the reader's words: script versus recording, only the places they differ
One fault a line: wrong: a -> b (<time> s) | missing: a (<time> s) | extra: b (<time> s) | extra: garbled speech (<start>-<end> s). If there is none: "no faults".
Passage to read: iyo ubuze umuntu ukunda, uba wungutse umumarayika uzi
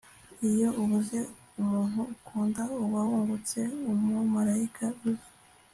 no faults